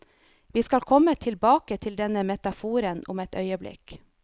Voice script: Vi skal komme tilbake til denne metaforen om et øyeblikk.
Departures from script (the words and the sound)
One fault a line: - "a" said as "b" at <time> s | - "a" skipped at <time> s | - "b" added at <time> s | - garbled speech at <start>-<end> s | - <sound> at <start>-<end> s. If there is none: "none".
none